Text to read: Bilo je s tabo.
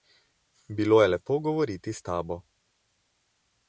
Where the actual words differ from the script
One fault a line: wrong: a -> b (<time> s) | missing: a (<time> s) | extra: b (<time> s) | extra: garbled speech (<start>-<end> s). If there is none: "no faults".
extra: lepo govoriti (1.1 s)